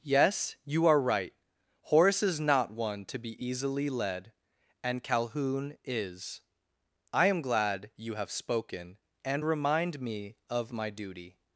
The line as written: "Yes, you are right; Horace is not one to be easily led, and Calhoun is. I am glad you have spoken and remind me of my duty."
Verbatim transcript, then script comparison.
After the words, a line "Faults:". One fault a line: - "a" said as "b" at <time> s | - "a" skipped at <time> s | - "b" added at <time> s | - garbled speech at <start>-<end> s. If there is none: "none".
"Yes, you are right; Horace is not one to be easily led, and Calhoun is. I am glad you have spoken and remind me of my duty."
Faults:
none